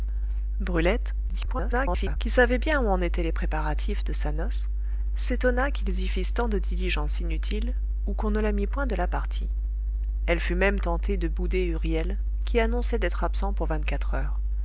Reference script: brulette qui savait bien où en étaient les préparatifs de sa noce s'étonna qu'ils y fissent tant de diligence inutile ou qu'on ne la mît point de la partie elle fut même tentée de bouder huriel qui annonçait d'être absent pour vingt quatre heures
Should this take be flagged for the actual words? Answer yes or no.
yes